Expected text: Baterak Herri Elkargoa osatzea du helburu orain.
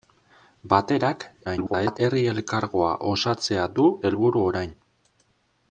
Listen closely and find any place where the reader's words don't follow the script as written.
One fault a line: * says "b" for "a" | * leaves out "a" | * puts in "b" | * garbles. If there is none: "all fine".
* garbles